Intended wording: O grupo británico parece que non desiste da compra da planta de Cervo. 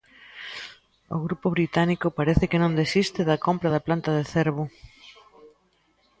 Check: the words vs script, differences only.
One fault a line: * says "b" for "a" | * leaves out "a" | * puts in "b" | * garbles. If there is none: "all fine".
all fine